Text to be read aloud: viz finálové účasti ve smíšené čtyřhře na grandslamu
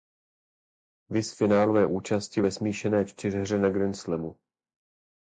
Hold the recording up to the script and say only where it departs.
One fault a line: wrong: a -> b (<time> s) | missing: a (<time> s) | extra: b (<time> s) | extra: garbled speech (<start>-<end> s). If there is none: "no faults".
no faults